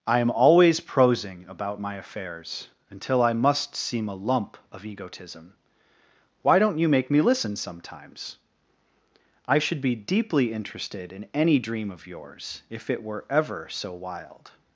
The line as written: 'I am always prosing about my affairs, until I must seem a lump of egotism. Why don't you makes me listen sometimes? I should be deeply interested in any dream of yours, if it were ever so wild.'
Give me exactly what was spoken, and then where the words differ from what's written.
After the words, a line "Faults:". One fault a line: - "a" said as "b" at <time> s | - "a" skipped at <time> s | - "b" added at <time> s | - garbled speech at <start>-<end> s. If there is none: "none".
'I am always prosing about my affairs, until I must seem a lump of egotism. Why don't you make me listen sometimes? I should be deeply interested in any dream of yours, if it were ever so wild.'
Faults:
- "makes" said as "make" at 6.9 s